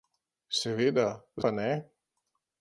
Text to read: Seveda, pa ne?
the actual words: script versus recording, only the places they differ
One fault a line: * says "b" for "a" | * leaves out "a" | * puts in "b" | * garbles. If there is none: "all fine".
all fine